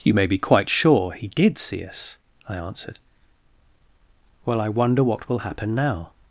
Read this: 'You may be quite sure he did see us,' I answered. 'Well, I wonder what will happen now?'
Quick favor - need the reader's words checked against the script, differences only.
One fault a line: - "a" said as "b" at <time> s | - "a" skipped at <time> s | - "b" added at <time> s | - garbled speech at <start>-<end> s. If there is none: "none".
none